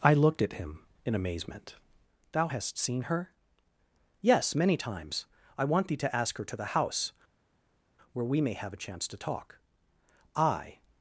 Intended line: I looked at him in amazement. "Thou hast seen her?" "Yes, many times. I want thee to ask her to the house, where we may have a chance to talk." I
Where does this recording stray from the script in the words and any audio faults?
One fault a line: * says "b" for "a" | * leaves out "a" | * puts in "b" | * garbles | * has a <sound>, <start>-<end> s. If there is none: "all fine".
all fine